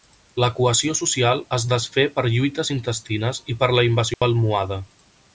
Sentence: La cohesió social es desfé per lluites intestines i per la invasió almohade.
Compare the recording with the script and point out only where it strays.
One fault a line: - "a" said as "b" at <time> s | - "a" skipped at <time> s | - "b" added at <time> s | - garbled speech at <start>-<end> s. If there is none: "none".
none